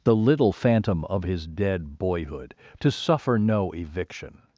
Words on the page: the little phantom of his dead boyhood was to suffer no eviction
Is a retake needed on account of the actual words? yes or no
yes